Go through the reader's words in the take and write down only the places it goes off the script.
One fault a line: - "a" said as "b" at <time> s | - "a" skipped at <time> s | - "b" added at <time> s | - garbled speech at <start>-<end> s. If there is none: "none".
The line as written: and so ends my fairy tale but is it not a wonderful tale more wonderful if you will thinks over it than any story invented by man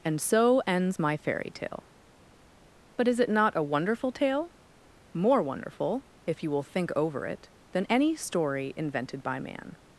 - "thinks" said as "think" at 6.6 s